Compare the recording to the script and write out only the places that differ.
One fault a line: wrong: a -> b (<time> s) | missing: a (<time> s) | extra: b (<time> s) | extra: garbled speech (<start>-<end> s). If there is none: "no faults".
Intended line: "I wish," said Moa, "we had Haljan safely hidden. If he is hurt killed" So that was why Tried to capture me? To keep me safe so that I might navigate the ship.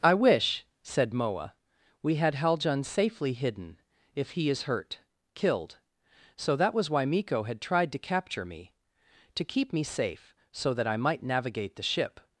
extra: Miko had (7.0 s)